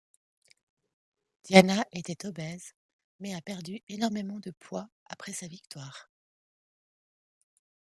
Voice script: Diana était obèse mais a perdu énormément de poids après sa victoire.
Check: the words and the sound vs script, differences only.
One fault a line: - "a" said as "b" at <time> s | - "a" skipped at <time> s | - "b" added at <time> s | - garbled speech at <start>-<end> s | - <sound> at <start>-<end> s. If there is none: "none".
none